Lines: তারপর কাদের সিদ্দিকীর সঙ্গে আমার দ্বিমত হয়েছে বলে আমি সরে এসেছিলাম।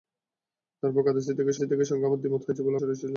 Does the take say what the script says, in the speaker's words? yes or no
no